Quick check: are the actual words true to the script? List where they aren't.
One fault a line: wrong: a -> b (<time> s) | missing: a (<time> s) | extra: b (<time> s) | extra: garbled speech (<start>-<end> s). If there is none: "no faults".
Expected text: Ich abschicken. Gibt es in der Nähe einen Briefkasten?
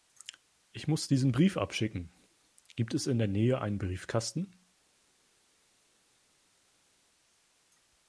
extra: muss diesen Brief (0.9 s)